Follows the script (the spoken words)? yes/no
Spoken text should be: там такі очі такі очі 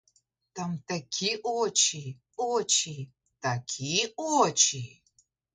no